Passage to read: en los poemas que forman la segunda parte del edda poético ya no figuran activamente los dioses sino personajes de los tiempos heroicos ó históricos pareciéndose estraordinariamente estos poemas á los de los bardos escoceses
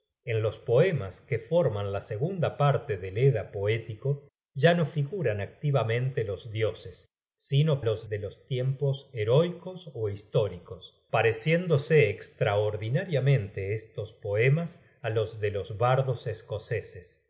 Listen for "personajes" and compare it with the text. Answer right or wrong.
wrong